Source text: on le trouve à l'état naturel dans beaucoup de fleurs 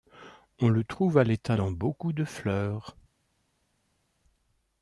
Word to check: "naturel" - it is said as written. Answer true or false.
false